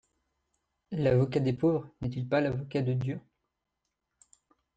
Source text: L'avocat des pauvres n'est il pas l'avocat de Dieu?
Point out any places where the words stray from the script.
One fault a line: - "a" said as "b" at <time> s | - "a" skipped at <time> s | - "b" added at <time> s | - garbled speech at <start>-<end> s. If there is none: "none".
none